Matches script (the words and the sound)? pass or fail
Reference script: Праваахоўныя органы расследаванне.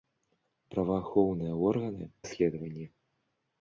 pass